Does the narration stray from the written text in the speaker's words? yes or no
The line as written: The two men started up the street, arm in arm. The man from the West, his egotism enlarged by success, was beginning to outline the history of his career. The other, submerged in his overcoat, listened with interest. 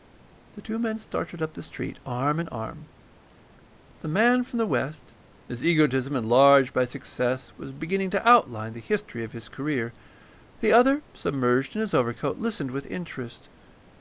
no